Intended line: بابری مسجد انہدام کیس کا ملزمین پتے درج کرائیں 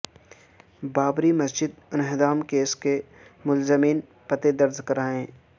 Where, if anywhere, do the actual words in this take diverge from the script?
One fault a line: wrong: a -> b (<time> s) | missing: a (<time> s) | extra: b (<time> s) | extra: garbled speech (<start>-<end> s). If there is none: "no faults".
wrong: کا -> کے (2.8 s)